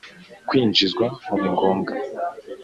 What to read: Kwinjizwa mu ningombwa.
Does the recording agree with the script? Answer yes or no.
yes